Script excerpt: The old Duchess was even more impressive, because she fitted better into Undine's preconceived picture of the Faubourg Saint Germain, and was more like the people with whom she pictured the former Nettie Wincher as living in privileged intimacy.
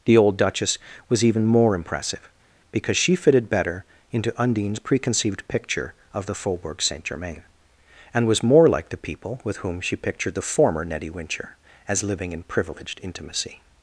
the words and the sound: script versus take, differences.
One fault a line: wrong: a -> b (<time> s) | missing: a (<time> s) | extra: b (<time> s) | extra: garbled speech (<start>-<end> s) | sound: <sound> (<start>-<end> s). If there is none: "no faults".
no faults